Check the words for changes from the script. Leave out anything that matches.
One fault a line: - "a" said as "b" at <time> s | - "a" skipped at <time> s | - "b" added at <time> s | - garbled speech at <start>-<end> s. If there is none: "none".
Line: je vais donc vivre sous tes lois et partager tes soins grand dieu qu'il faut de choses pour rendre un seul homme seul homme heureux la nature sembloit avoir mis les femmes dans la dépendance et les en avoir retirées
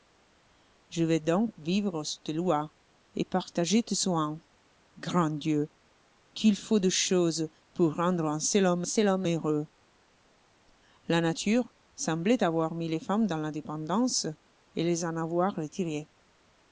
none